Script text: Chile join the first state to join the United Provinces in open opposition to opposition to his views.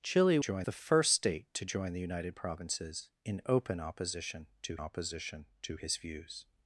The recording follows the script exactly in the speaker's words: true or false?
true